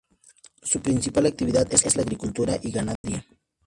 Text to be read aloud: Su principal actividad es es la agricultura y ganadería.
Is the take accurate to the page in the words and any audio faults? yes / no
no